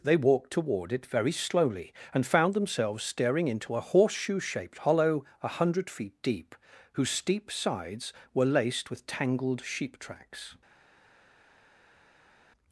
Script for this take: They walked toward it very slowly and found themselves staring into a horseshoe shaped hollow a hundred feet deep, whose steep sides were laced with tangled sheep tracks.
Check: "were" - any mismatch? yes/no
no